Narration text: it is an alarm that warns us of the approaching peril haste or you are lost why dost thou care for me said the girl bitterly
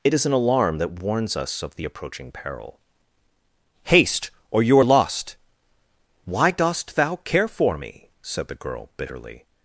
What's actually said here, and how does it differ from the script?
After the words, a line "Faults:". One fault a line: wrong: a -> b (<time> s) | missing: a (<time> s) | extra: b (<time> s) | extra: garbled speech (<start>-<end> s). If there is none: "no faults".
it is an alarm that warns us of the approaching peril haste or you are lost why dost thou care for me said the girl bitterly
Faults:
no faults